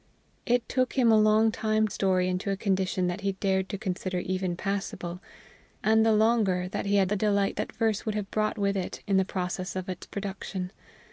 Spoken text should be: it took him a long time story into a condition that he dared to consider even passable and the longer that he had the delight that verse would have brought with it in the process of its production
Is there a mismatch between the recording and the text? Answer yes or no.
no